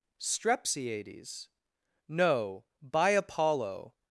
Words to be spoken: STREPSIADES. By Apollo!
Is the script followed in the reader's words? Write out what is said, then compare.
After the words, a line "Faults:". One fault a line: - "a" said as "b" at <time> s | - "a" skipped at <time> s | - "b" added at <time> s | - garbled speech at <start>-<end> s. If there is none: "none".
STREPSIADES. No, by Apollo!
Faults:
- "No" added at 2.1 s